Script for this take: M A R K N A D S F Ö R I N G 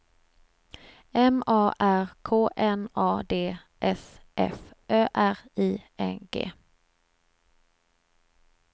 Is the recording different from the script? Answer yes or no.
no